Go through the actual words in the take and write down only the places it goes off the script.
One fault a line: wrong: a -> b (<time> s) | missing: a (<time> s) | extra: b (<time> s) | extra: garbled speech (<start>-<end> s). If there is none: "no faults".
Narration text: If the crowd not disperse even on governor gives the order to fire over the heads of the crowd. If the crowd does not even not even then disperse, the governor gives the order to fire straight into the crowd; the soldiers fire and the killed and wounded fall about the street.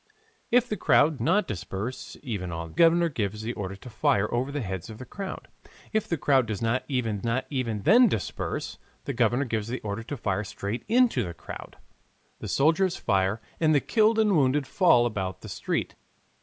no faults